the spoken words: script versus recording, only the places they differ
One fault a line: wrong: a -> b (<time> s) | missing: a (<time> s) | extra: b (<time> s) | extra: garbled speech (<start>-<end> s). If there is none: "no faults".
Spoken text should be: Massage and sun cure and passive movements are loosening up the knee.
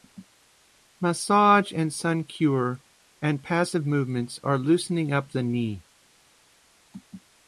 no faults